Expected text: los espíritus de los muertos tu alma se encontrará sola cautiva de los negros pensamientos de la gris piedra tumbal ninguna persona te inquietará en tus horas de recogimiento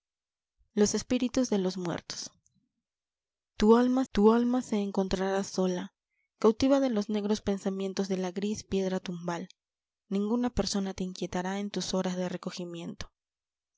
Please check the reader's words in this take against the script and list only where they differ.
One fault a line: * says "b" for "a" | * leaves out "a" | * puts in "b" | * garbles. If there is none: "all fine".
* puts in "tu alma"